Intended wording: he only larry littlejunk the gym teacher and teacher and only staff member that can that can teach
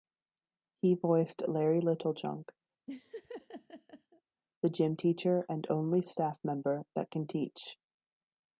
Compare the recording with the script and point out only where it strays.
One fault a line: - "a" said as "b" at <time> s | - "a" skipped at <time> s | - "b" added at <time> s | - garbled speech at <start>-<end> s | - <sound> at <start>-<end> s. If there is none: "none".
- "only" said as "voiced" at 0.9 s
- laugh at 2.9-4.2 s
- "teacher and" skipped at 5.6 s
- "that can" skipped at 7.2 s